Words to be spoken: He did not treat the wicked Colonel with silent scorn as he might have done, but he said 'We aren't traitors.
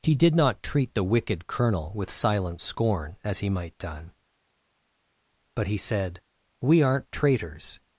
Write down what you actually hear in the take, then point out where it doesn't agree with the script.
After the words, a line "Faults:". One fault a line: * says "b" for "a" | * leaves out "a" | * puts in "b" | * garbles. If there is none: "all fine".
He did not treat the wicked Colonel with silent scorn as he might done, but he said 'We aren't traitors.
Faults:
* leaves out "have"